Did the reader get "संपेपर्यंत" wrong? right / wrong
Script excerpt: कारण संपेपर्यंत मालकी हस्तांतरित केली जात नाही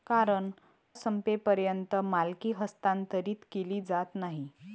right